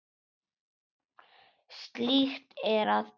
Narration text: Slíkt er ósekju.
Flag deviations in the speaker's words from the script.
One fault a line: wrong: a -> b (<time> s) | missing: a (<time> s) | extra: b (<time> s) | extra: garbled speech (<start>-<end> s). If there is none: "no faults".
extra: að (2.9 s)